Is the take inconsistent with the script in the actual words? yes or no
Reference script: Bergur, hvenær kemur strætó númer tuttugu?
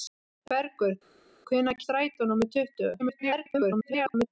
yes